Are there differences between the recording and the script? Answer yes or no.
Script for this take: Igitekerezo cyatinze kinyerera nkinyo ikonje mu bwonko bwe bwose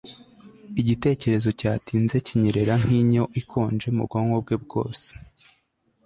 no